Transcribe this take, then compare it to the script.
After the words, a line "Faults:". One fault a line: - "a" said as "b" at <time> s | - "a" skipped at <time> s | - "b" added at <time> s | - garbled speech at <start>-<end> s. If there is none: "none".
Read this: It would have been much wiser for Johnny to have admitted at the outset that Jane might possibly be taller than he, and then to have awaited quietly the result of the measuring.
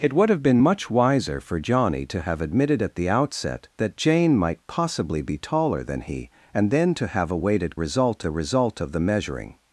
It would have been much wiser for Johnny to have admitted at the outset that Jane might possibly be taller than he, and then to have awaited result the result of the measuring.
Faults:
- "quietly" said as "result" at 7.7 s